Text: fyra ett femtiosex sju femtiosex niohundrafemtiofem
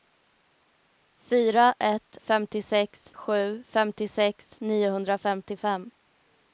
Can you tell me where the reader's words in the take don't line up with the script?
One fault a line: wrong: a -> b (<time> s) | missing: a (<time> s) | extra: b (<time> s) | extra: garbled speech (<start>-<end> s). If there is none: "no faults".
no faults